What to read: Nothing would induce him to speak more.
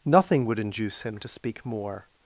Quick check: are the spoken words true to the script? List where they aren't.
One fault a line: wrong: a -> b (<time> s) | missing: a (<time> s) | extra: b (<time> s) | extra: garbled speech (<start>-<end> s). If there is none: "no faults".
no faults